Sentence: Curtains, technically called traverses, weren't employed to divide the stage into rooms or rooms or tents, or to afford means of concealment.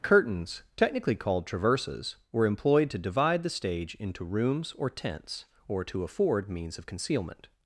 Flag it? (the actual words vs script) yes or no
yes